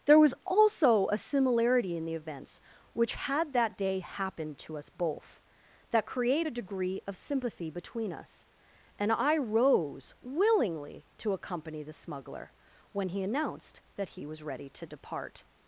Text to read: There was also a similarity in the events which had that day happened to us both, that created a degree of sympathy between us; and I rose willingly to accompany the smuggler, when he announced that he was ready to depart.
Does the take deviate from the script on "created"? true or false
true